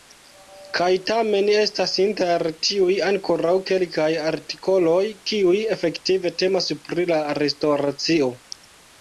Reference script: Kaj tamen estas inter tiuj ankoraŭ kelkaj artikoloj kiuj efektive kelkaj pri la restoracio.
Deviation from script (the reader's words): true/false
true